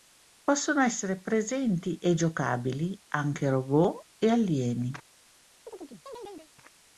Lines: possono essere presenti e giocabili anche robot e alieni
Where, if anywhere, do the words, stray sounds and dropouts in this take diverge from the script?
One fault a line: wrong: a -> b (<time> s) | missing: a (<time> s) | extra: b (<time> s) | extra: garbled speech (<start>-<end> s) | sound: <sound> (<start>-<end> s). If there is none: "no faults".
sound: chirp (5.7-6.5 s)